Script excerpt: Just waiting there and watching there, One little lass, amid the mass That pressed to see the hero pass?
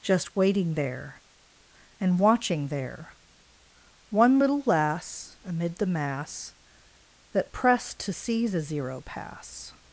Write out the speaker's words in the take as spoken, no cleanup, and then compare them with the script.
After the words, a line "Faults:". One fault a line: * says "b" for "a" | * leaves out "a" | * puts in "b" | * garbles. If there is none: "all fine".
Just waiting there and watching there, One little lass, amid the mass That pressed to see the zero pass?
Faults:
* says "zero" for "hero"